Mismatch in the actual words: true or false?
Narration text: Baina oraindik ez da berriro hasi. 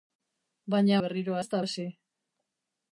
true